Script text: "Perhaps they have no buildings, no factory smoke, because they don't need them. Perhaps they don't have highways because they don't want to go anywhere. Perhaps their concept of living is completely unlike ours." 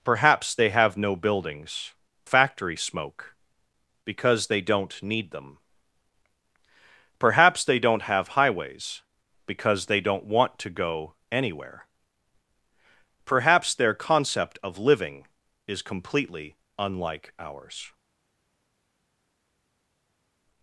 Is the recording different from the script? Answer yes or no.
yes